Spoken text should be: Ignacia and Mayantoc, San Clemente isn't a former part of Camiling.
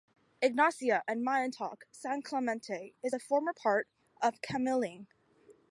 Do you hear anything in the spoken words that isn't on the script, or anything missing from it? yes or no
yes